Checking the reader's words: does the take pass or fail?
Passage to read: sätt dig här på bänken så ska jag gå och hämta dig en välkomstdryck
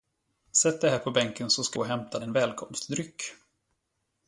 fail